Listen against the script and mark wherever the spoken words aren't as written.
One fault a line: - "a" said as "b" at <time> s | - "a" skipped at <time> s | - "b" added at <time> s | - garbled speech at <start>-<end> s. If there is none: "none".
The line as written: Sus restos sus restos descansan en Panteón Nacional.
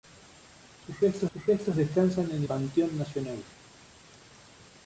none